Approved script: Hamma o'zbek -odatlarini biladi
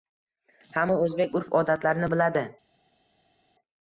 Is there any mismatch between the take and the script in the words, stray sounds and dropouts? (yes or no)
yes